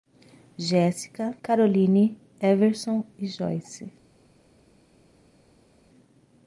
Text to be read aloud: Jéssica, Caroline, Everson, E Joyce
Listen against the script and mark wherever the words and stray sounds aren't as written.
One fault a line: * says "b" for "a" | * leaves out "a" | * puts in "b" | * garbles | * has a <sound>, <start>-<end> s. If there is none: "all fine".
all fine